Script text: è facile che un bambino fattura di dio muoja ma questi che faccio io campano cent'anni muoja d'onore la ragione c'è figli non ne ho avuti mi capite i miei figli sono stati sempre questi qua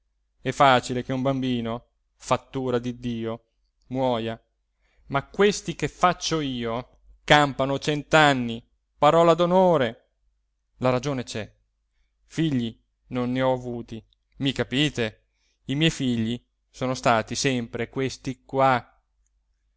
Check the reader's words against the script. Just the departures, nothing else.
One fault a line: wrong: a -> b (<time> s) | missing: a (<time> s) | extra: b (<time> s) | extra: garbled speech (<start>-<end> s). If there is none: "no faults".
wrong: muoja -> parola (9.0 s)